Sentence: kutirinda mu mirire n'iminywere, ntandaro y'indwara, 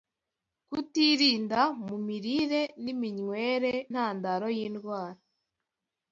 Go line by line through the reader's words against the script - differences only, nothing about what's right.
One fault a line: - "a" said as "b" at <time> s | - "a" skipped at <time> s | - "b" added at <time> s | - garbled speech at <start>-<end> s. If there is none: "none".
none